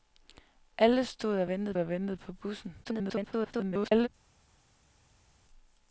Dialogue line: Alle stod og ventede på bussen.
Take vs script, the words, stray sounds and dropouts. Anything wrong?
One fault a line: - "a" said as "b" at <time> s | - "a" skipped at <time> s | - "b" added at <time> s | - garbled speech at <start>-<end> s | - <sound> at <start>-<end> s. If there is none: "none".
- "og ventede" added at 1.8 s
- garbled speech at 2.8-4.1 s